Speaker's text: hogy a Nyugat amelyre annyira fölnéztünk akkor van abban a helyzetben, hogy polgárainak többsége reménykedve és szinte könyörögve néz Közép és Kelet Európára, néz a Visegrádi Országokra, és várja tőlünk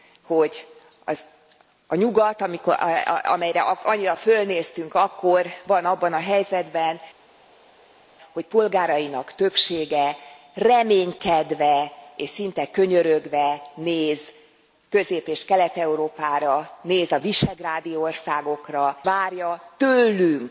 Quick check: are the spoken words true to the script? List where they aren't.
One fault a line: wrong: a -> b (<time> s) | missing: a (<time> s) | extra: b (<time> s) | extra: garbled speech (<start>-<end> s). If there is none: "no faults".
missing: és (19.0 s)